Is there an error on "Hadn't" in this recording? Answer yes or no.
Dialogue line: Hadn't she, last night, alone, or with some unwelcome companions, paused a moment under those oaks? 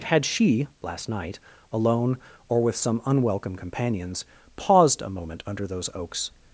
yes